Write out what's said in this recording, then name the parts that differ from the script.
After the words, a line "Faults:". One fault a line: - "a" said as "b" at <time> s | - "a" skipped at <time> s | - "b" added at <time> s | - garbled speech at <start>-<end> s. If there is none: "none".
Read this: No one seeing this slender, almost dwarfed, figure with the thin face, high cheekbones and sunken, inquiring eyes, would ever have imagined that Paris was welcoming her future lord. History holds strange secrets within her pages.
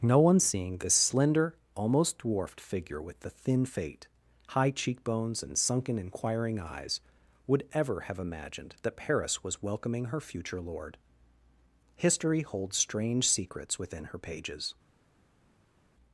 No one seeing this slender, almost dwarfed, figure with the thin fate, high cheekbones and sunken, inquiring eyes, would ever have imagined that Paris was welcoming her future lord. History holds strange secrets within her pages.
Faults:
- "face" said as "fate" at 3.6 s